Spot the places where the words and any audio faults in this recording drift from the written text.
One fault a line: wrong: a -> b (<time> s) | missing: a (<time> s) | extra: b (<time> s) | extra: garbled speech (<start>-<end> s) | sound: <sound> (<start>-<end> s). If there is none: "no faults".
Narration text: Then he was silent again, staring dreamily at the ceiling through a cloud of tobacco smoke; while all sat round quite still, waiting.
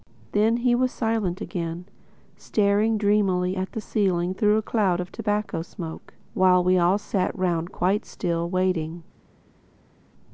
extra: we (6.6 s)